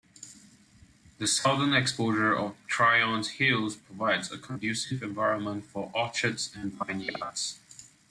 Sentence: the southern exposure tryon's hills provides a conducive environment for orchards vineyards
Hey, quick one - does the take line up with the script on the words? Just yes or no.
no